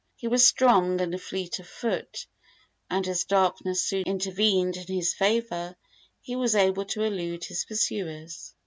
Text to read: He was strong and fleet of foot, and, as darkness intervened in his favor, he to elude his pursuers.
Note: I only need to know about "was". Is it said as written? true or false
true